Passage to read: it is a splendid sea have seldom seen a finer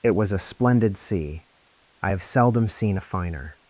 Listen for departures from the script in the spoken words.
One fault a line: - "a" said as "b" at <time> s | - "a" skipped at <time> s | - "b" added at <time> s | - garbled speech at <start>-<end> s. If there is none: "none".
- "is" said as "was" at 0.1 s
- "i" added at 2.0 s